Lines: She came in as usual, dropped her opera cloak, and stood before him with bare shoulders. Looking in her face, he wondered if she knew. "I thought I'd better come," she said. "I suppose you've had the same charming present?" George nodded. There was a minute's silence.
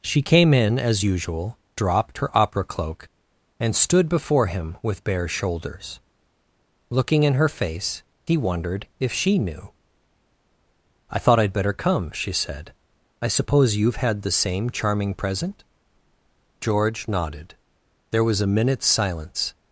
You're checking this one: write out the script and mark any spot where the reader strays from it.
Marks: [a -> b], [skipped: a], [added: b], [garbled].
She came in as usual, dropped her opera cloak, and stood before him with bare shoulders. Looking in her face, he wondered if she knew. "I thought I'd better come," she said. "I suppose you've had the same charming present?" George nodded. There was a minute's silence.